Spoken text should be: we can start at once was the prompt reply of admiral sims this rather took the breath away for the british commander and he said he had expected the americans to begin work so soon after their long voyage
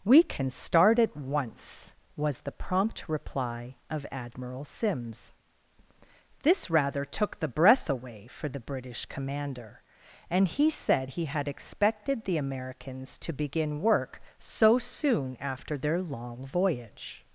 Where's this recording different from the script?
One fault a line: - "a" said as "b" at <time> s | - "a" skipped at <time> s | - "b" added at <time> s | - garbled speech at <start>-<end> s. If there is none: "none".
none